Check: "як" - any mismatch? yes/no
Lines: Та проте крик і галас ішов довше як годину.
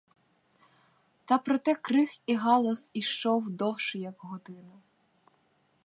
no